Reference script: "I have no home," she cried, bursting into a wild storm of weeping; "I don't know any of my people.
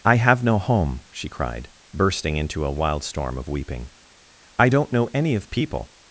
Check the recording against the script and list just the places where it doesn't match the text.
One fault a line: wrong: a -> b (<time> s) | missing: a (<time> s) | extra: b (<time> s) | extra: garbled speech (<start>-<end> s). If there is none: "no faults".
missing: my (5.5 s)